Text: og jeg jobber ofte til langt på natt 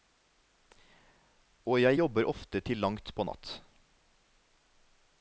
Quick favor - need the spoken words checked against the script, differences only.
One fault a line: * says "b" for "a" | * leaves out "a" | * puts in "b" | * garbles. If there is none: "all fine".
all fine